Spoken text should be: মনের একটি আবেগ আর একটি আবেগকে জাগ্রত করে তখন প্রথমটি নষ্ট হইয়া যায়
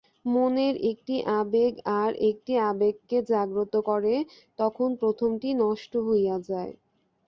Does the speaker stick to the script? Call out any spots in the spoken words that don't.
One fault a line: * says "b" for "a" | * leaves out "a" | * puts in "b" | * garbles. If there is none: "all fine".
all fine